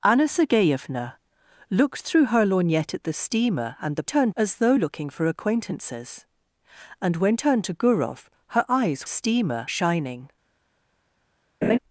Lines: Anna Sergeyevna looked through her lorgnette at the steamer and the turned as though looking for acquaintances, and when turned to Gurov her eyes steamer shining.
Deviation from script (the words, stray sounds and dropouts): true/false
true